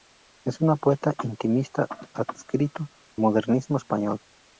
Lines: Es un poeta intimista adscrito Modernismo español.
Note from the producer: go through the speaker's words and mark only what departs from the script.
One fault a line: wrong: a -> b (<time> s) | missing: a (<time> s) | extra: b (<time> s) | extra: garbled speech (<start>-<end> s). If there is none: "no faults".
no faults